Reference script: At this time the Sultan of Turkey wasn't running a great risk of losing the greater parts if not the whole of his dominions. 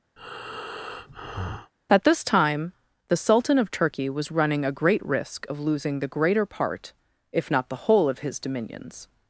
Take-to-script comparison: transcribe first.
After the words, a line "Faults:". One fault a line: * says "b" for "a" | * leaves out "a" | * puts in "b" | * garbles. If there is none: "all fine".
At this time the Sultan of Turkey was running a great risk of losing the greater part if not the whole of his dominions.
Faults:
* says "was" for "wasn't"
* says "part" for "parts"